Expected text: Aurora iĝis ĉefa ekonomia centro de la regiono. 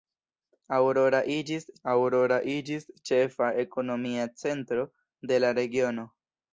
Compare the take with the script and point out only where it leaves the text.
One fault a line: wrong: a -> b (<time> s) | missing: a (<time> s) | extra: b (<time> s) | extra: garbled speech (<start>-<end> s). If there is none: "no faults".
extra: aurora iĝis (1.9 s)